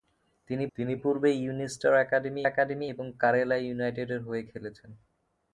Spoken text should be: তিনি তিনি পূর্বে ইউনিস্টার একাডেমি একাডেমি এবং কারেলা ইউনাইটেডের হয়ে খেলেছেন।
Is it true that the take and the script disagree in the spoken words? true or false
false